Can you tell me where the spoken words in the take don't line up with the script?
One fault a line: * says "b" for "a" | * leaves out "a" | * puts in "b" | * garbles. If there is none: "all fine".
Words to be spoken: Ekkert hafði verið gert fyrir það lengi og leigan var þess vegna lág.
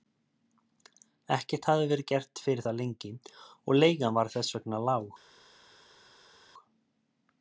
all fine